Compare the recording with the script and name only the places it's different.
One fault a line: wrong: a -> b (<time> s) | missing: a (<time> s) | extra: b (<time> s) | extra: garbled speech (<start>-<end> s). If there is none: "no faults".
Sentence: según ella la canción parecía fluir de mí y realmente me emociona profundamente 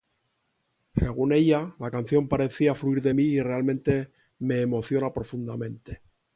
no faults